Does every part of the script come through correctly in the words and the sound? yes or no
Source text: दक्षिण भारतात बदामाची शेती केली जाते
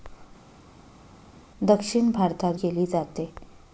no